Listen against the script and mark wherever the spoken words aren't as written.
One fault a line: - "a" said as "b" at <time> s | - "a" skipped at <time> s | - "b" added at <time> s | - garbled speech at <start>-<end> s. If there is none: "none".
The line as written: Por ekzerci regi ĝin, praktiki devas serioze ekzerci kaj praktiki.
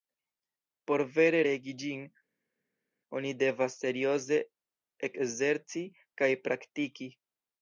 - "ekzerci" said as "vere" at 1.2 s
- "praktiki" said as "oni" at 3.2 s